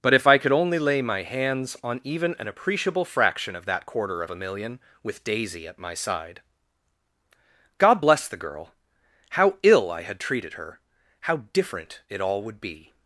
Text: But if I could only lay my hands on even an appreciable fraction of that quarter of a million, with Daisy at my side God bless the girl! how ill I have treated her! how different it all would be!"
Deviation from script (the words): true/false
true